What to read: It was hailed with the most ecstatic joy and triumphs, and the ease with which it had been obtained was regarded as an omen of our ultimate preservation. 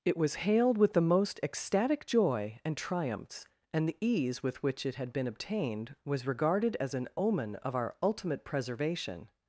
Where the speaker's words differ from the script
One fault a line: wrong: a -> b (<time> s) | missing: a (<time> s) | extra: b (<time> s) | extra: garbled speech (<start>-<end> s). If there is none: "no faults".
no faults